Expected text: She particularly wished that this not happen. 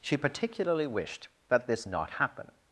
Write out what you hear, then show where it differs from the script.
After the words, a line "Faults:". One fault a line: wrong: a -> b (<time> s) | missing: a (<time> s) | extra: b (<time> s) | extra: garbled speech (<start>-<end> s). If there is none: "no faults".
She particularly wished that this not happen.
Faults:
no faults